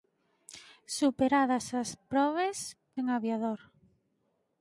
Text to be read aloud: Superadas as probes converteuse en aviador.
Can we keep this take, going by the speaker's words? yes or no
no